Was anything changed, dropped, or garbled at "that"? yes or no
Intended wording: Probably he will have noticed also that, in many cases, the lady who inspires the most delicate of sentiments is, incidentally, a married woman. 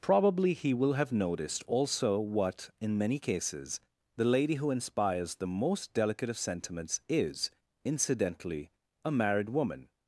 yes